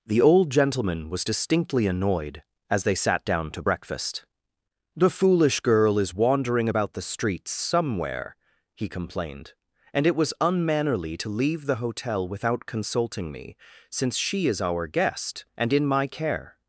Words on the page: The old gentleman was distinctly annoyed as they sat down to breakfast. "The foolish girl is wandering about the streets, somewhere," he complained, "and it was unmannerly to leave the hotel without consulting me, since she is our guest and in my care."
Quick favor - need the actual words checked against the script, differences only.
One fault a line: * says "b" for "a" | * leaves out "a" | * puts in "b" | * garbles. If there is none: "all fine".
all fine